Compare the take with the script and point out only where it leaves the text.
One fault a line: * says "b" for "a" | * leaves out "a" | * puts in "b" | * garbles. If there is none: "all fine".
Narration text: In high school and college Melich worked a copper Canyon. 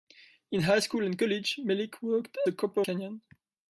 all fine